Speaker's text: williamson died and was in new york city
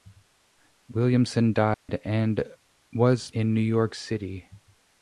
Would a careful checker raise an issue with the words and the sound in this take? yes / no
yes